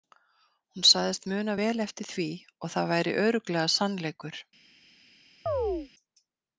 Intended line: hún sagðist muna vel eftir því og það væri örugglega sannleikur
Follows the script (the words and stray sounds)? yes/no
no